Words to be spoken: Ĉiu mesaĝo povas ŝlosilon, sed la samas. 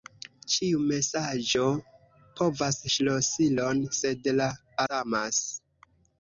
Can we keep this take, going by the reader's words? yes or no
yes